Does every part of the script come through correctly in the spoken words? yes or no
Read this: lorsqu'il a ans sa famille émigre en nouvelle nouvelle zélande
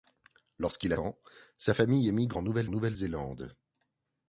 yes